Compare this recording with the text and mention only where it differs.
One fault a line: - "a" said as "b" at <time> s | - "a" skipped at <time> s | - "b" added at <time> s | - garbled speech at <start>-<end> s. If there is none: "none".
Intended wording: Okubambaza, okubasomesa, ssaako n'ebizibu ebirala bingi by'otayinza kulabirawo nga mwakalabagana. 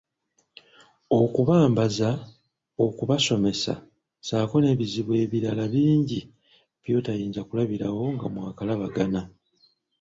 none